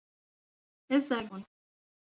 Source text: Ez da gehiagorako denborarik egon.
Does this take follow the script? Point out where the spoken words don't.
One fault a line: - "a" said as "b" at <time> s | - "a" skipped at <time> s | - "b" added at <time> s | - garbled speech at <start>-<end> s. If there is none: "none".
- "gehiagorako denborarik" skipped at 1.2 s